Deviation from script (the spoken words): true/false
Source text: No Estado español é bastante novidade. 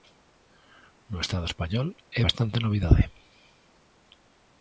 false